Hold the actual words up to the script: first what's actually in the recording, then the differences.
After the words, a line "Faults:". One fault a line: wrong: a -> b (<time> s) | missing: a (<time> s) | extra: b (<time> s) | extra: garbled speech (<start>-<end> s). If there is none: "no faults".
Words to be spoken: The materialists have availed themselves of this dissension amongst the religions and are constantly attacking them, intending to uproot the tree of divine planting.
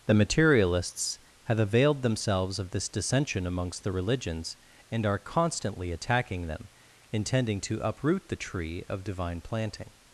The materialists have availed themselves of this dissension amongst the religions and are constantly attacking them, intending to uproot the tree of divine planting.
Faults:
no faults